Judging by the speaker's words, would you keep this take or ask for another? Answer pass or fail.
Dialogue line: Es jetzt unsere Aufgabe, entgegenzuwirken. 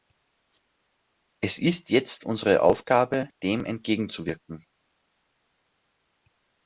fail